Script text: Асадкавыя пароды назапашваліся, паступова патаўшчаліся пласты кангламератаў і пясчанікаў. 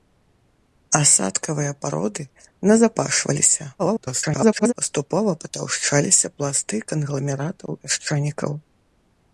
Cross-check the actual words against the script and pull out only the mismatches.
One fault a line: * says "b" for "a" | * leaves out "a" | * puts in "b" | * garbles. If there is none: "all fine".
* garbles
* leaves out "і"